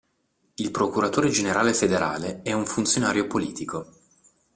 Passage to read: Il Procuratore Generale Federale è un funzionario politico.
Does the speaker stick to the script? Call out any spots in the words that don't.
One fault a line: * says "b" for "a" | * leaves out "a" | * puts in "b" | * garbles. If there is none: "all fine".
all fine